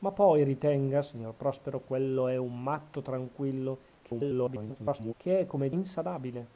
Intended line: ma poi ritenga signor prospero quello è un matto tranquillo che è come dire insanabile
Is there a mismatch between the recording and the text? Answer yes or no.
yes